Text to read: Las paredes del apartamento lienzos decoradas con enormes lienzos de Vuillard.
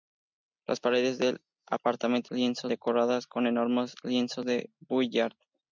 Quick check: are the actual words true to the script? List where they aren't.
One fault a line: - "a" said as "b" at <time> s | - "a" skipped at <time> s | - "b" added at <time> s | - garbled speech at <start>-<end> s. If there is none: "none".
none